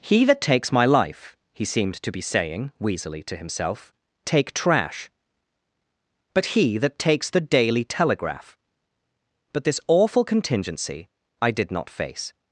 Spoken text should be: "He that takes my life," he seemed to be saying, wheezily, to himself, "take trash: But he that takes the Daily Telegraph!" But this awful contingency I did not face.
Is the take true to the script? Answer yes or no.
yes